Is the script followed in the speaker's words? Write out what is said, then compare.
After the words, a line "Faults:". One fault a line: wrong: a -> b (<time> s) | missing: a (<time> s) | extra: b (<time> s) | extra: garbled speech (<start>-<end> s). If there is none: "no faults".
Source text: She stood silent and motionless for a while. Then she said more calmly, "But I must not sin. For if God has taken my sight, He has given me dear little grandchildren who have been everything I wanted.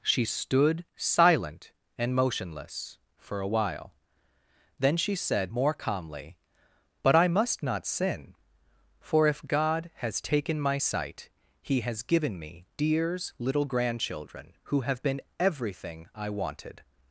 She stood silent and motionless for a while. Then she said more calmly, "But I must not sin. For if God has taken my sight, He has given me dears little grandchildren who have been everything I wanted.
Faults:
wrong: dear -> dears (12.8 s)